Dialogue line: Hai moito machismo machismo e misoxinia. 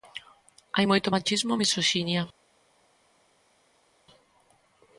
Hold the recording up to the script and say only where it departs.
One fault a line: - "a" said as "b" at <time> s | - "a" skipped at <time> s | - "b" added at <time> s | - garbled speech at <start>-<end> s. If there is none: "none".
- "machismo" skipped at 1.5 s